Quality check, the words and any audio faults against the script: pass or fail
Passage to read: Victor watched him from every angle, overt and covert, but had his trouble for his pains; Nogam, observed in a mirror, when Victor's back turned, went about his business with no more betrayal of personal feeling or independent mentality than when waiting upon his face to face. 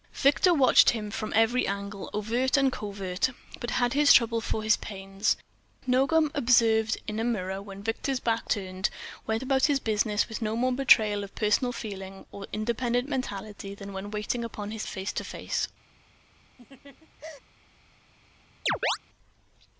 fail